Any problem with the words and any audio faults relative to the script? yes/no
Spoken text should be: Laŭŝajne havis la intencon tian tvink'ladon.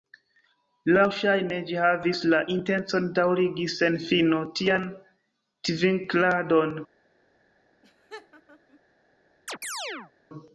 yes